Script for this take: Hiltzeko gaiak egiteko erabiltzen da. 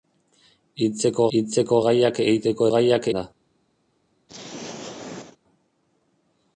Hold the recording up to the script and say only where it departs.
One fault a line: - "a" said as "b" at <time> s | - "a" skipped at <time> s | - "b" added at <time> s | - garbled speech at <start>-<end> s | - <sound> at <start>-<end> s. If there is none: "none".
- "hiltzeko" added at 1.4 s
- "erabiltzen" said as "gaiak" at 2.7 s
- throat clearing at 4.3-5.4 s